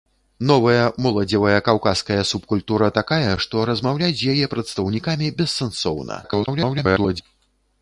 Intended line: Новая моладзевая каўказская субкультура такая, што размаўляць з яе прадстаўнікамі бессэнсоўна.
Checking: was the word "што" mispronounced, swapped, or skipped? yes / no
no